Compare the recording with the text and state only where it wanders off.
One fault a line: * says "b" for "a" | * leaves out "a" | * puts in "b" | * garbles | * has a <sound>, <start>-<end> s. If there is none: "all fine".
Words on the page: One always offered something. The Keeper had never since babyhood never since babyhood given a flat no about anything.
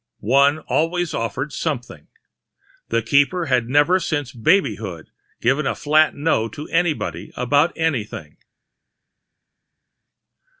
* leaves out "never since babyhood"
* puts in "to anybody"